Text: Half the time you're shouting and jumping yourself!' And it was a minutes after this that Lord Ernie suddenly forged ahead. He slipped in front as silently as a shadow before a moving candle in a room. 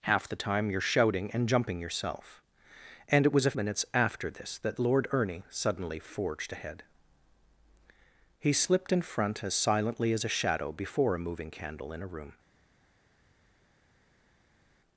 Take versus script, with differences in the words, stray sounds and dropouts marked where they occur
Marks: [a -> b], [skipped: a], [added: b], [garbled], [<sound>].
Half the time you're shouting and jumping yourself!' And it was a minutes after this that Lord Ernie suddenly forged ahead. He slipped in front as silently as a shadow before a moving candle in a room.